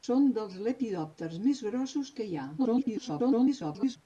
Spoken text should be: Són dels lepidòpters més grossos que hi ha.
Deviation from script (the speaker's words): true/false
true